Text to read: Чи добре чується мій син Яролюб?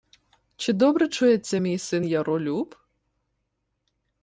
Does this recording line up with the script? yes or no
yes